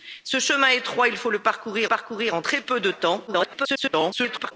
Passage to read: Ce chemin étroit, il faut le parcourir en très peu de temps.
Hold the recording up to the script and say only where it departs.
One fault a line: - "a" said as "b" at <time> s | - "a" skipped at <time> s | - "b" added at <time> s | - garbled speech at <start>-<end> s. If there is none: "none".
- "parcourir" added at 1.8 s
- garbled speech at 3.3-4.5 s